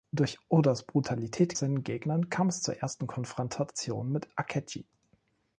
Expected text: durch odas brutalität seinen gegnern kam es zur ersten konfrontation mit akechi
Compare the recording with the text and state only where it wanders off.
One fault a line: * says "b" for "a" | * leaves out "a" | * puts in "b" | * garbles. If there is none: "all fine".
all fine